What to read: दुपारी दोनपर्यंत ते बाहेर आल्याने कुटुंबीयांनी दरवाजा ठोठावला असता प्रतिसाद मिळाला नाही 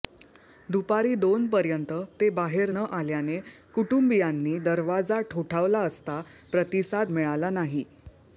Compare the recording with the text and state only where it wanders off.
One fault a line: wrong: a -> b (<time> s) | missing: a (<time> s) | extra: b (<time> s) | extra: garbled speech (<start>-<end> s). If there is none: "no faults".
extra: न (2.7 s)